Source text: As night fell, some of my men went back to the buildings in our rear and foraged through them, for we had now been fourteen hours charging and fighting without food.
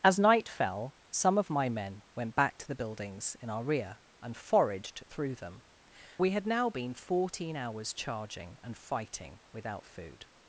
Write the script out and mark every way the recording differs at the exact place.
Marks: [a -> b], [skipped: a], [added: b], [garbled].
As night fell, some of my men went back to the buildings in our rear and foraged through them, [skipped: for] we had now been fourteen hours charging and fighting without food.